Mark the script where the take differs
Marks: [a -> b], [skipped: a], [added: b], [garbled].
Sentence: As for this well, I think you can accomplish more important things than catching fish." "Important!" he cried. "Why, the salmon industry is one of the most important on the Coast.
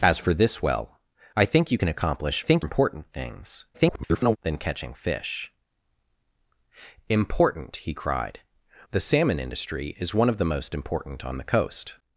As for this well, I think you can accomplish [more -> think] important things [garbled] than catching fish." "Important!" he cried. [skipped: "Why,] the salmon industry is one of the most important on the Coast.